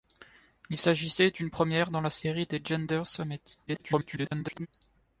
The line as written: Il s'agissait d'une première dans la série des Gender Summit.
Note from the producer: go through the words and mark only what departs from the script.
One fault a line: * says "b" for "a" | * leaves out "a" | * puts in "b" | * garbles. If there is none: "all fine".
* garbles